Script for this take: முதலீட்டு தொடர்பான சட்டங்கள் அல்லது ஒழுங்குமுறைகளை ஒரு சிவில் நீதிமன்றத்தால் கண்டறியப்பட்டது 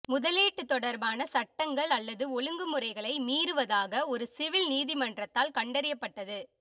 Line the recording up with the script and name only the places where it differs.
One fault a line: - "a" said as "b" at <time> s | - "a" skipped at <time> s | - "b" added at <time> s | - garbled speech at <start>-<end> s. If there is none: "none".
- "மீறுவதாக" added at 3.2 s